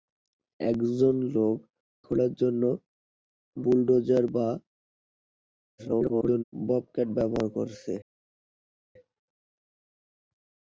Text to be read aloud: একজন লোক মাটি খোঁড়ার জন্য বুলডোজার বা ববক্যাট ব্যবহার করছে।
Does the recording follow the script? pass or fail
fail